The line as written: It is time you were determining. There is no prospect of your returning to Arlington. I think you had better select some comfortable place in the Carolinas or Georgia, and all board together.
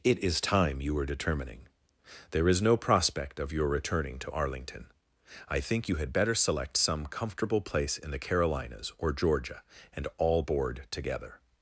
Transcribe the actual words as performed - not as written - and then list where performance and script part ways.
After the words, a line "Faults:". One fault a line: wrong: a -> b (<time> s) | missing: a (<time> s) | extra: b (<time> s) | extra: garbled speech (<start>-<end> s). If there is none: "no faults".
It is time you were determining. There is no prospect of your returning to Arlington. I think you had better select some comfortable place in the Carolinas or Georgia, and all board together.
Faults:
no faults